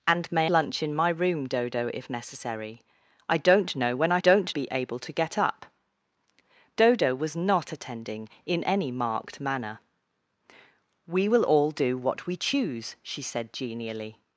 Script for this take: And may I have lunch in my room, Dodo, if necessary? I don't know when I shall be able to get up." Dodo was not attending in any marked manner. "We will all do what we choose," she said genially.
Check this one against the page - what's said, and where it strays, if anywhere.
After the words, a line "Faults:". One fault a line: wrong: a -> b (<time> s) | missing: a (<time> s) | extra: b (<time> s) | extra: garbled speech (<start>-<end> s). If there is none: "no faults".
And may lunch in my room, Dodo, if necessary? I don't know when I don't be able to get up." Dodo was not attending in any marked manner. "We will all do what we choose," she said genially.
Faults:
missing: I have (0.5 s)
wrong: shall -> don't (4.2 s)